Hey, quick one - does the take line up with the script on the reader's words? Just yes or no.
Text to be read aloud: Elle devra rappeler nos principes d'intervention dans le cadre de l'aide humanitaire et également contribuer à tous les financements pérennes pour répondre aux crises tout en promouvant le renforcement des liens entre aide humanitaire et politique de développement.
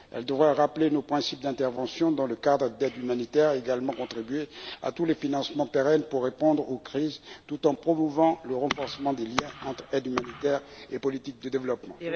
yes